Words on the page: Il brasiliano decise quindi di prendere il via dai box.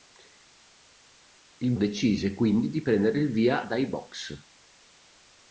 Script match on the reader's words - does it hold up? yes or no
no